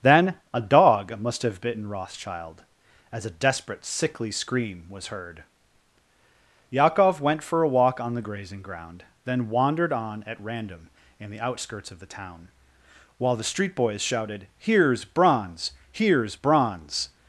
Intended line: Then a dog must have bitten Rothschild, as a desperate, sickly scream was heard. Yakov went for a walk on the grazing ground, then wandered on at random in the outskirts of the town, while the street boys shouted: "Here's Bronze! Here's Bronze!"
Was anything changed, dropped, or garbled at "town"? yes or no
no